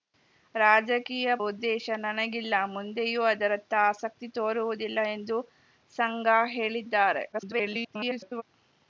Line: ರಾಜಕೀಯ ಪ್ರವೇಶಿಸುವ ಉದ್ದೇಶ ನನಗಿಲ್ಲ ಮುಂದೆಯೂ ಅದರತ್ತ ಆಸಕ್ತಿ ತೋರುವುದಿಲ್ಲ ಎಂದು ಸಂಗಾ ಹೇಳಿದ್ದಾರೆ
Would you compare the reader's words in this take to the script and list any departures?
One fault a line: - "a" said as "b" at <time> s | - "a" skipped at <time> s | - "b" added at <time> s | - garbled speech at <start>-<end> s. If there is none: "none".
- "ಪ್ರವೇಶಿಸುವ" skipped at 1.3 s
- garbled speech at 7.3-8.4 s